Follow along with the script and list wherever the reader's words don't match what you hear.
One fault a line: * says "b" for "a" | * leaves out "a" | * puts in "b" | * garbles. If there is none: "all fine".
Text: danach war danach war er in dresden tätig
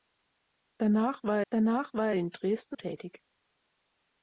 all fine